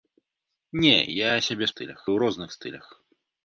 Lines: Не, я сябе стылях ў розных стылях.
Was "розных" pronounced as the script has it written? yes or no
yes